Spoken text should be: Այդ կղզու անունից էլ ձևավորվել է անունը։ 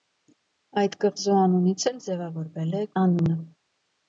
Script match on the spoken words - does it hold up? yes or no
yes